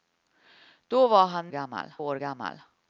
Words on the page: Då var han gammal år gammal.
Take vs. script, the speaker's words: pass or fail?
pass